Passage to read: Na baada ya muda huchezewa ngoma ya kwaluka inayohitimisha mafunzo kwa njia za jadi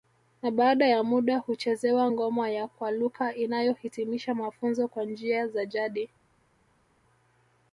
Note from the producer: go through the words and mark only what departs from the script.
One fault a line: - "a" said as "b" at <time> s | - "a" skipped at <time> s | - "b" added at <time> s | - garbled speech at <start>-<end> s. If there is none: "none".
none